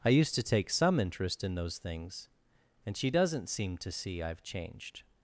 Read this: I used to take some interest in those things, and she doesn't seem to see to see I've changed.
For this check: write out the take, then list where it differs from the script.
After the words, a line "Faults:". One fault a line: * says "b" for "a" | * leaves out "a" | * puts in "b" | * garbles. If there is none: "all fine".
I used to take some interest in those things, and she doesn't seem to see I've changed.
Faults:
* leaves out "to see"